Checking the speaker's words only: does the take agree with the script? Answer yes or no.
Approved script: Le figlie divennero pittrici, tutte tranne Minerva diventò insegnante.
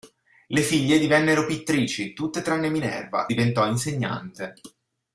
yes